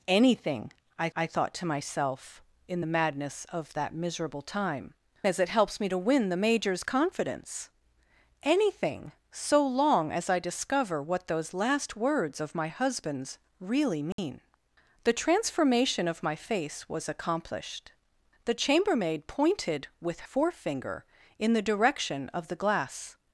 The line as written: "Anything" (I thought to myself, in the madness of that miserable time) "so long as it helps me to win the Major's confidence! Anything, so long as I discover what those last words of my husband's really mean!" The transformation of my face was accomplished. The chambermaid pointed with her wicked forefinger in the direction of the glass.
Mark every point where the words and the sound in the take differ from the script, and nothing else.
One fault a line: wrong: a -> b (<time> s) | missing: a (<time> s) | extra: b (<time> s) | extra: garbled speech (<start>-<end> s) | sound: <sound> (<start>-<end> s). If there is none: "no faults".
extra: I (1.1 s)
missing: so long (4.9 s)
sound: dropout (14.1-14.2 s)
missing: her wicked (20.3 s)